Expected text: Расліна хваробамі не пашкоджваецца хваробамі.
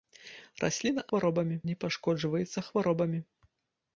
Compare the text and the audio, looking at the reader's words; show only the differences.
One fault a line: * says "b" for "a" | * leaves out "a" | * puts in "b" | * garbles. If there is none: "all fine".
all fine